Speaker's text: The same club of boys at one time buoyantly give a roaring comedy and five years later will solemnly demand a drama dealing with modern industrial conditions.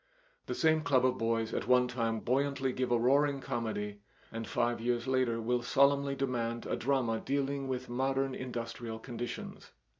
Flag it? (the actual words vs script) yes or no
no